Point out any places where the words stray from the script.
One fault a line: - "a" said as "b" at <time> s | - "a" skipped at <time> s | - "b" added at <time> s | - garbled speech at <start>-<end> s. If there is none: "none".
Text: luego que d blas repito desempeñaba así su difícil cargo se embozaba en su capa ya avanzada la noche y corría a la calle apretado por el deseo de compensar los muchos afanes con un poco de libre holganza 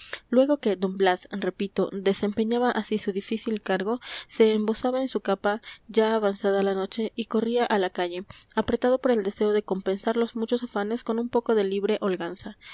none